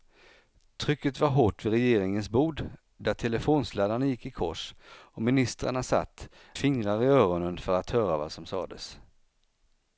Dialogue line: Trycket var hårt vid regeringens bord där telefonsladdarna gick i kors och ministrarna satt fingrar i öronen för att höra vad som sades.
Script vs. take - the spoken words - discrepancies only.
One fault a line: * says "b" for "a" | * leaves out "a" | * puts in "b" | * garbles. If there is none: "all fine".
all fine